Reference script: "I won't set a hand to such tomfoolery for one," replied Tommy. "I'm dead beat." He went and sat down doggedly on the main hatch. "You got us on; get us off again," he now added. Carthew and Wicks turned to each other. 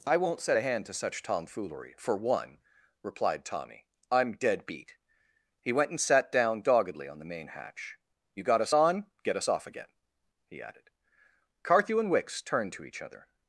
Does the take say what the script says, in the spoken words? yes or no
no